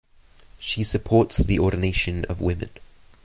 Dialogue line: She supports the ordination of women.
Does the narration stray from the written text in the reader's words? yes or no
no